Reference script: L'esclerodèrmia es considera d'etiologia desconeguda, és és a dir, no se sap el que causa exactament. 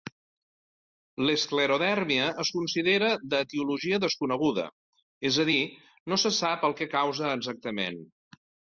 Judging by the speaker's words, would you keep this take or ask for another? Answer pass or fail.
fail